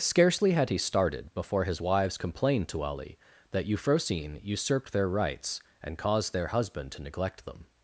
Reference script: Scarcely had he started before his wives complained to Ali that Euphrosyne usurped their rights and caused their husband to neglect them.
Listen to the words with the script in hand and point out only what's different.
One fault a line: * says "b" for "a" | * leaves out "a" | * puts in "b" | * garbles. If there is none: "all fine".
all fine